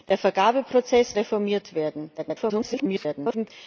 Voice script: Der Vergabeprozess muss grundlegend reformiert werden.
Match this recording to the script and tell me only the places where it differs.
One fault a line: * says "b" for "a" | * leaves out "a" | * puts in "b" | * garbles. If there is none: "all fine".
* leaves out "muss grundlegend"
* garbles